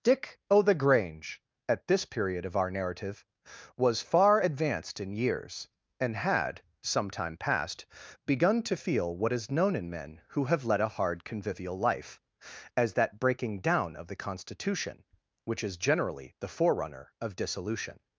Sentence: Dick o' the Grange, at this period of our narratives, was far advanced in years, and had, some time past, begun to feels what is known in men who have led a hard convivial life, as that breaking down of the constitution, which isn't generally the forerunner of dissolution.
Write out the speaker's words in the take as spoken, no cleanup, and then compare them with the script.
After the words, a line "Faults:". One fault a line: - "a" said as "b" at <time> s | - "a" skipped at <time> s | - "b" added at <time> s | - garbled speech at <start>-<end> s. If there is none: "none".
Dick o' the Grange, at this period of our narrative, was far advanced in years, and had, some time past, begun to feel what is known in men who have led a hard convivial life, as that breaking down of the constitution, which is generally the forerunner of dissolution.
Faults:
- "narratives" said as "narrative" at 2.7 s
- "feels" said as "feel" at 8.7 s
- "isn't" said as "is" at 15.6 s